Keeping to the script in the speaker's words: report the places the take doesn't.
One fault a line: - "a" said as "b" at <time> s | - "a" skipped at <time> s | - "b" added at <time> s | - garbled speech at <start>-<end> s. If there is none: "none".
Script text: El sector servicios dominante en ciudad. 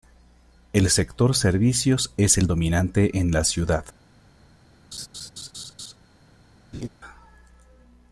- "es el" added at 2.2 s
- "la" added at 3.3 s